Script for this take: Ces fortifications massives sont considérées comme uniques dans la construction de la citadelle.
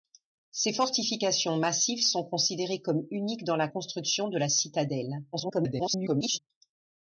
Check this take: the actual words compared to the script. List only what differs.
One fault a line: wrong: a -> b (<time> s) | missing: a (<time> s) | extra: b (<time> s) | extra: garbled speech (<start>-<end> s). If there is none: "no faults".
extra: garbled speech (5.3-6.4 s)